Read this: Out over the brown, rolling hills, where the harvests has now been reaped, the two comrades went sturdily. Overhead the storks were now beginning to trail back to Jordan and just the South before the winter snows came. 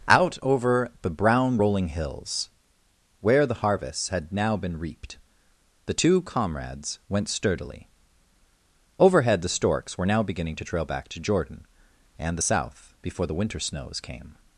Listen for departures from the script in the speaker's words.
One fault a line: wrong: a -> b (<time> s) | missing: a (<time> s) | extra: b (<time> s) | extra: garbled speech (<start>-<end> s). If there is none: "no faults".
wrong: has -> had (4.1 s)
missing: just (12.4 s)